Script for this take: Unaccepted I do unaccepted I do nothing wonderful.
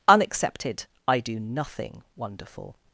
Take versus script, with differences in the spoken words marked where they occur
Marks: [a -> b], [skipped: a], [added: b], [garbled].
Unaccepted I do [skipped: unaccepted I do] nothing wonderful.